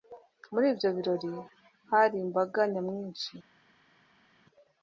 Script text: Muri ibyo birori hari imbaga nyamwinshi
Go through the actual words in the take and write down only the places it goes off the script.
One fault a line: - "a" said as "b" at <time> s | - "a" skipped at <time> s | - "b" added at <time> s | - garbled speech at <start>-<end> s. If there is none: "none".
none